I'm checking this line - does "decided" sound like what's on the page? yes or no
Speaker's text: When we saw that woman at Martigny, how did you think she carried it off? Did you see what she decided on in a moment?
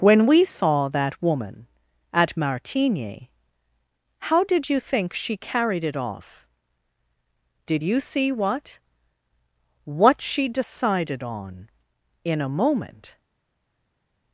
yes